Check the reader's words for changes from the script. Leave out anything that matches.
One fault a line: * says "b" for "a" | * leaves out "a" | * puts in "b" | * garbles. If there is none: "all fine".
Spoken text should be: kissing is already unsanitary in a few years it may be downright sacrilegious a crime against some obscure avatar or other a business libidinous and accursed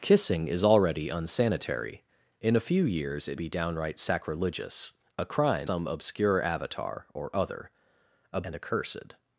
* leaves out "may"
* leaves out "against"
* leaves out "business libidinous"